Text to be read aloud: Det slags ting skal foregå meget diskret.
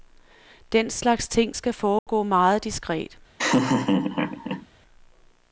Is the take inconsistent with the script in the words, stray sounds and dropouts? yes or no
yes